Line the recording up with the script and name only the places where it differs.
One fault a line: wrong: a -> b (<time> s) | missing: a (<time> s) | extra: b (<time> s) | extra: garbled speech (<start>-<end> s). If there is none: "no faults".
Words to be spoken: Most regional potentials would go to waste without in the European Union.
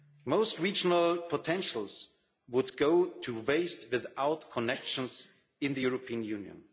extra: connections (4.5 s)